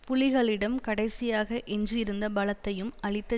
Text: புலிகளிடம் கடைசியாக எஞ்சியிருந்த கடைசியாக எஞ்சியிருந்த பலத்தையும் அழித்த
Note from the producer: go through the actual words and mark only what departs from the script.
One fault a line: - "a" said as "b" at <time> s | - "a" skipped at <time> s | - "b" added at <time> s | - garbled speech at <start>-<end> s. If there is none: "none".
- "கடைசியாக எஞ்சியிருந்த" skipped at 2.3 s